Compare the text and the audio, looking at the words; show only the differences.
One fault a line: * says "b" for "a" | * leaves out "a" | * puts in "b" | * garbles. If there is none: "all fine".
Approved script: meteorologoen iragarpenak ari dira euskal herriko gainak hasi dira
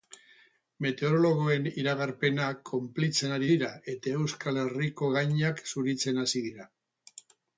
* puts in "konplitzen"
* puts in "eta"
* puts in "zuritzen"